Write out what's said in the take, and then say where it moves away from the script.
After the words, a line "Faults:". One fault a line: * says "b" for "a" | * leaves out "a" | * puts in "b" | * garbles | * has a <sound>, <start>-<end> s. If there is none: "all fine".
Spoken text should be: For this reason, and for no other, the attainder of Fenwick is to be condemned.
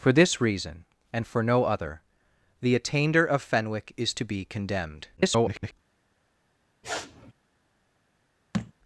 For this reason, and for no other, the attainder of Fenwick is to be condemned. [garbled]
Faults:
* garbles
* has a sniff, 6.8-7.3 s
* has a thud, 8.5-8.7 s